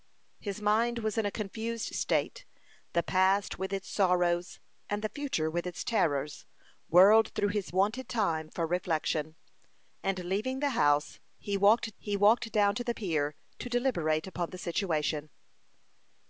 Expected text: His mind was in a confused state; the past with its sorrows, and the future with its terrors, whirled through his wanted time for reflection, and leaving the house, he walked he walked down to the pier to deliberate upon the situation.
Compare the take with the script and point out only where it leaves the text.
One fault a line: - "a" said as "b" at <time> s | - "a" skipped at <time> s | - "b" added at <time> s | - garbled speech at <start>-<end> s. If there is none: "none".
none